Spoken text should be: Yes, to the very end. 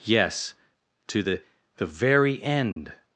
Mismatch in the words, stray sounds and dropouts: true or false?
true